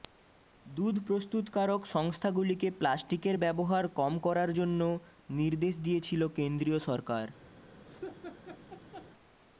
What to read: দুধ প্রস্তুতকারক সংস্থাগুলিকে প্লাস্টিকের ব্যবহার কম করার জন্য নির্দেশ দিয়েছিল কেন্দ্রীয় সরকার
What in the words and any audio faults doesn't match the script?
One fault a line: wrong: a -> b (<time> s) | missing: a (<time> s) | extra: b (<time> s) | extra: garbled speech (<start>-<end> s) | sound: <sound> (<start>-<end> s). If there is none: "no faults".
sound: laugh (7.9-9.1 s)